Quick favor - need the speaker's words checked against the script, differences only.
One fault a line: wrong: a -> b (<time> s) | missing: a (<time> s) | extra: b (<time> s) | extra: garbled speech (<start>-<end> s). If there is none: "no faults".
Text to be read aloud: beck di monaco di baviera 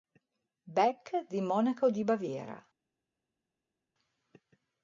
no faults